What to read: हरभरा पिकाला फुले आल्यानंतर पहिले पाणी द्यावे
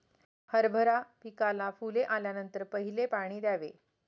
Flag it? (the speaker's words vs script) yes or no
no